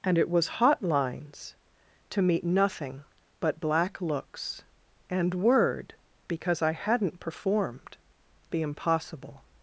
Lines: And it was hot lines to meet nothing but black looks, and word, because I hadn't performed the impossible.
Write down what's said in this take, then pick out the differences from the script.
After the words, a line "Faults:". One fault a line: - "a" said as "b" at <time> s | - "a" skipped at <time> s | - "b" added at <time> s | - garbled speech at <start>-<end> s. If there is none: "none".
And it was hot lines to meet nothing but black looks, and word, because I hadn't performed the impossible.
Faults:
none